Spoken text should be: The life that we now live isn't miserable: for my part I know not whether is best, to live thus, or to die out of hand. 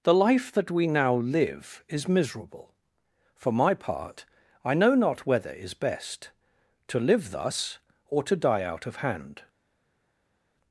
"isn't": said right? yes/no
no